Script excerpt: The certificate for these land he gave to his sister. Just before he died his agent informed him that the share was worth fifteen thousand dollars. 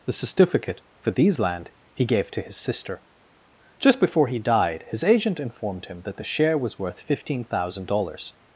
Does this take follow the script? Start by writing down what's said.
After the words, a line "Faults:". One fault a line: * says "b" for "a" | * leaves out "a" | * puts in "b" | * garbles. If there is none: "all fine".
The certificate for these land he gave to his sister. Just before he died his agent informed him that the share was worth fifteen thousand dollars.
Faults:
all fine